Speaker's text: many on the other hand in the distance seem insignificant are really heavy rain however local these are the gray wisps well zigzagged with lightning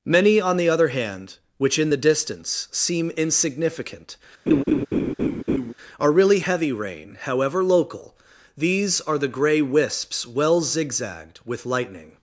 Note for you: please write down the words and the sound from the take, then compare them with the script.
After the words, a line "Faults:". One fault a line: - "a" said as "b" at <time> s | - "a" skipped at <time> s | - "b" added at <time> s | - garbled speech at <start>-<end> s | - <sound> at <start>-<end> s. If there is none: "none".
many on the other hand which in the distance seem insignificant are really heavy rain however local these are the gray wisps well zigzagged with lightning
Faults:
- "which" added at 1.6 s
- laugh at 4.5-5.7 s